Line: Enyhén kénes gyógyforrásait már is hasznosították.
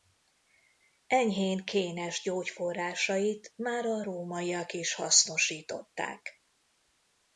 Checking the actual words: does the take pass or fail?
fail